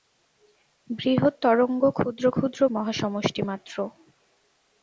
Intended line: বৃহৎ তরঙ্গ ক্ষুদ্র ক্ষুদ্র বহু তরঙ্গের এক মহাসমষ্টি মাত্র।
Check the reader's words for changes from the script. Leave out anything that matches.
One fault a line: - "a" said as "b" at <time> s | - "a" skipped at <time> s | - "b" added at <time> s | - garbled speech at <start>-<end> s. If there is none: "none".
- "বহু তরঙ্গের এক" skipped at 2.6 s